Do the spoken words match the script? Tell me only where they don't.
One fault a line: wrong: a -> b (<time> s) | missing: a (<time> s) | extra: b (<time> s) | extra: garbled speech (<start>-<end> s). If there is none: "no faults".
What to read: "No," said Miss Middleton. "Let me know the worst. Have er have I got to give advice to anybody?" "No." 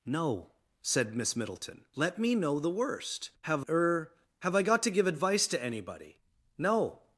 no faults